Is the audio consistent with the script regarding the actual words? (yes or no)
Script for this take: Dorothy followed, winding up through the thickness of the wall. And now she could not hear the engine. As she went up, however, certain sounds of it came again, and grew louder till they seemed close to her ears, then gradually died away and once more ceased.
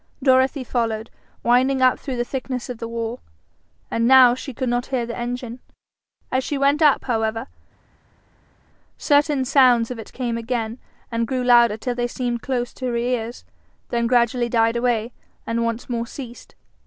yes